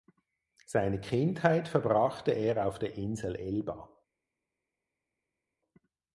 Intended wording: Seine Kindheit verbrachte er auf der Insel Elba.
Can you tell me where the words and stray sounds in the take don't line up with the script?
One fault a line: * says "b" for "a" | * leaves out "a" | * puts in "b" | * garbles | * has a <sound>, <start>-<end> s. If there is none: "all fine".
all fine